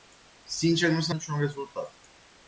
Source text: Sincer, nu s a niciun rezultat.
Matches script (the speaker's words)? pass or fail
pass